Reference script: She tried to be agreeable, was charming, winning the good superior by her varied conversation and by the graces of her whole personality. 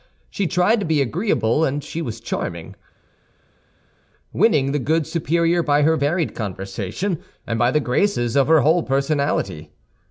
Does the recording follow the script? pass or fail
fail